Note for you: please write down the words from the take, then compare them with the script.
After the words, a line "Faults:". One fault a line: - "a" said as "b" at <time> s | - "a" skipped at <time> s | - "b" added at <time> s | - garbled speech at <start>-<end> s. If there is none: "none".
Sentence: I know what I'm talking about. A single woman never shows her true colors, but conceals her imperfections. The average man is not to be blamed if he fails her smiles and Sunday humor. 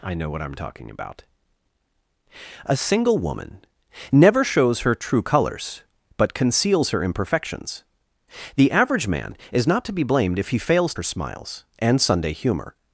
I know what I'm talking about. A single woman never shows her true colors, but conceals her imperfections. The average man is not to be blamed if he fails her smiles and Sunday humor.
Faults:
none